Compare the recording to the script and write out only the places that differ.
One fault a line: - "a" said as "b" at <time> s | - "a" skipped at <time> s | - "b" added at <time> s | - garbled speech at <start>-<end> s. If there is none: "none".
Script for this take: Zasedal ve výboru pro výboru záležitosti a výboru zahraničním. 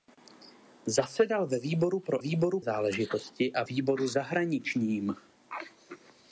none